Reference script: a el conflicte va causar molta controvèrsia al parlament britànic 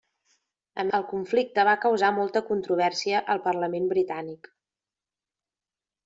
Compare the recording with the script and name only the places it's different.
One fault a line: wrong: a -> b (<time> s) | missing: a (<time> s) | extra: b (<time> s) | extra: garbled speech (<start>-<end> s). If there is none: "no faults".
no faults